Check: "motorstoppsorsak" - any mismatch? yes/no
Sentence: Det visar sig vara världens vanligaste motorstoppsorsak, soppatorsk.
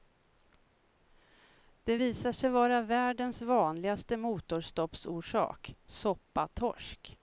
no